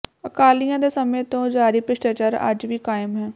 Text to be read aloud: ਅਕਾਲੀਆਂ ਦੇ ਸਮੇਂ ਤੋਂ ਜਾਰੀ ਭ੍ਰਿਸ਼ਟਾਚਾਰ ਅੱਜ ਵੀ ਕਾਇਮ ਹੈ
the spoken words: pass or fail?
pass